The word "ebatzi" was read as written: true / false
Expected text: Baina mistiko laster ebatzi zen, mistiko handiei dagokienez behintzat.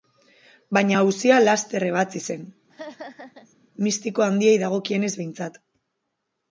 true